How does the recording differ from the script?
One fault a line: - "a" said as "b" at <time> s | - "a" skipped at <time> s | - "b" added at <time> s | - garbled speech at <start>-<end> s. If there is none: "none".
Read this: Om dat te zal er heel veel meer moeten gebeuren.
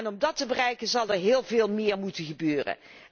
- "bereiken" added at 0.5 s